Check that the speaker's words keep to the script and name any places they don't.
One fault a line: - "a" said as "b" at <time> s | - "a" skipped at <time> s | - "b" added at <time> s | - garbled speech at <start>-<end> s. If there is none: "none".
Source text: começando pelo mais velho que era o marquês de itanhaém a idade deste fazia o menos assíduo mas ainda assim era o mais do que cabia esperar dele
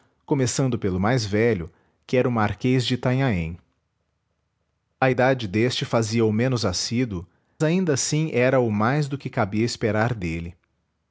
- "mas" skipped at 7.3 s